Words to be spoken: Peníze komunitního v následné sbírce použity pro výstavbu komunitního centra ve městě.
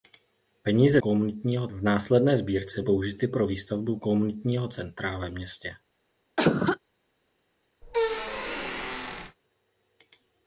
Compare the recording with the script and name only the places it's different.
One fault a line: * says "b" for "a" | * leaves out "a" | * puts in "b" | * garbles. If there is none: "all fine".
all fine